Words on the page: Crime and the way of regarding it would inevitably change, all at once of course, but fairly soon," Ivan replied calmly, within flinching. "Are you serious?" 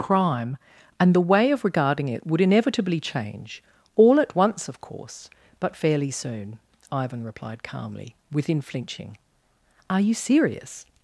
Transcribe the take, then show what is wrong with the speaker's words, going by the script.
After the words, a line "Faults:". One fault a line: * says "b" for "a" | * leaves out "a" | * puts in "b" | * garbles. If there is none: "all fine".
Crime and the way of regarding it would inevitably change, all at once of course, but fairly soon," Ivan replied calmly, within flinching. "Are you serious?"
Faults:
all fine